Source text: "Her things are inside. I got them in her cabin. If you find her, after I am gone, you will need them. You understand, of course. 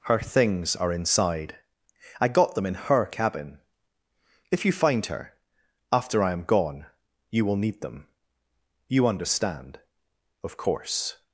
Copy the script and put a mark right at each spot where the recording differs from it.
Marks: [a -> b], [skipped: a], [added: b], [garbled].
"Her things are inside. I got them in her cabin. If you find her, after I am gone, you will need them. You understand, of course.